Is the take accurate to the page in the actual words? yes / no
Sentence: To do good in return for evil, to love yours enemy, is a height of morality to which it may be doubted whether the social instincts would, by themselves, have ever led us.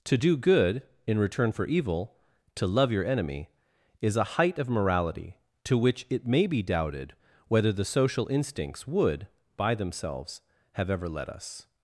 no